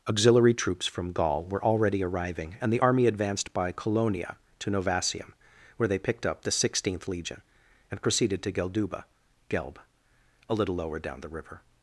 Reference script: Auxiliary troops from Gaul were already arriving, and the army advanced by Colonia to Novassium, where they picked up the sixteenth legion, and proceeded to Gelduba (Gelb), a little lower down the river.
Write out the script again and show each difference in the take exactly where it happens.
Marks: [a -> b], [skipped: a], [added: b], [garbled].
Auxiliary troops from Gaul were already arriving, and the army advanced by Colonia to Novassium, where they picked up the sixteenth legion, and proceeded to Gelduba (Gelb), a little lower down the river.